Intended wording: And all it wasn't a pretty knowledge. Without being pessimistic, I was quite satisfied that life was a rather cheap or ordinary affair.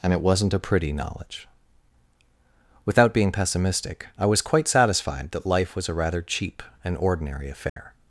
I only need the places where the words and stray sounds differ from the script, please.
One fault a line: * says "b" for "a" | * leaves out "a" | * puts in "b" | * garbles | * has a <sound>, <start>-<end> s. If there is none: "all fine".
* leaves out "all"
* says "and" for "or"
* has a dropout, 7.7-7.8 s